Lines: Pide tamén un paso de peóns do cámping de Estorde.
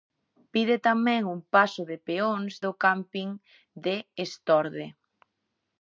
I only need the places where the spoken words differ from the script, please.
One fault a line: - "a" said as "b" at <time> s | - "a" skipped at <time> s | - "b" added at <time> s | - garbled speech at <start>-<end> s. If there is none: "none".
none